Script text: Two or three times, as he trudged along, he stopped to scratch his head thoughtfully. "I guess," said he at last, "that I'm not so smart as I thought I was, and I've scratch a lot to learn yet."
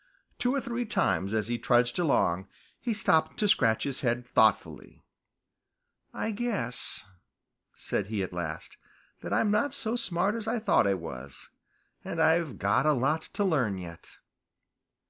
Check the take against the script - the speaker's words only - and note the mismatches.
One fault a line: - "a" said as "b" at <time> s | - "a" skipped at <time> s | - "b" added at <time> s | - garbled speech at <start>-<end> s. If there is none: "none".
- "scratch" said as "got" at 12.6 s